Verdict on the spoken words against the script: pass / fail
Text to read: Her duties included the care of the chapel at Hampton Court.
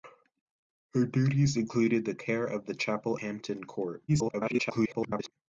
fail